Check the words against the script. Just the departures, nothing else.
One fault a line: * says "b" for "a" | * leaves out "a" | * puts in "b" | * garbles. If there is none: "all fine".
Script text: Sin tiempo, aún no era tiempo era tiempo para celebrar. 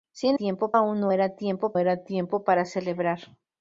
all fine